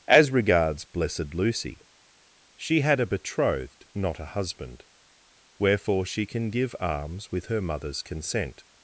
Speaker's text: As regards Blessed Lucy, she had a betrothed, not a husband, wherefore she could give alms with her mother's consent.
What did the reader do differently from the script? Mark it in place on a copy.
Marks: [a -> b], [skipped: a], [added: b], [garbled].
As regards Blessed Lucy, she had a betrothed, not a husband, wherefore she [could -> can] give alms with her mother's consent.